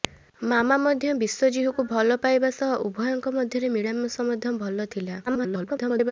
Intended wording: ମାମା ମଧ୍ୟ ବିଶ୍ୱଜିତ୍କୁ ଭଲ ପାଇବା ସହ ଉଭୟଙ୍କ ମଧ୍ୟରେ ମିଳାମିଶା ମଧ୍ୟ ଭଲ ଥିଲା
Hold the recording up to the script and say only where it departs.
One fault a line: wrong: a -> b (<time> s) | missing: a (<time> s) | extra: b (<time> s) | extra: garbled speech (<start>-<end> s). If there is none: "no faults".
extra: garbled speech (5.3-6.1 s)